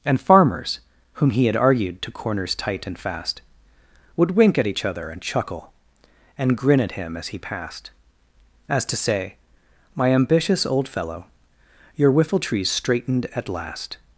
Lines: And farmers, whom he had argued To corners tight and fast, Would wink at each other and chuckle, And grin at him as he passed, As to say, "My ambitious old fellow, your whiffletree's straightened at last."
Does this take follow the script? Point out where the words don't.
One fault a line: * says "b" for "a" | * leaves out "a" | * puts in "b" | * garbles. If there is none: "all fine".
all fine